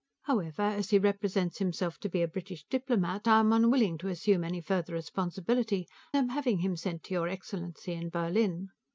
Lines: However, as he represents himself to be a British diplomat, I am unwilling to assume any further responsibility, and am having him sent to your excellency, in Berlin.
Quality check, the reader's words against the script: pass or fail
fail